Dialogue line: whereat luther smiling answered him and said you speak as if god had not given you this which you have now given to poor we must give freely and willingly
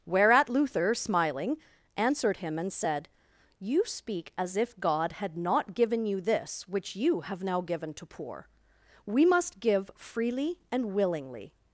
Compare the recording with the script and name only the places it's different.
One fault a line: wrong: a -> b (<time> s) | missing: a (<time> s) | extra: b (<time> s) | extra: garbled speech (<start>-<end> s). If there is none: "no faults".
no faults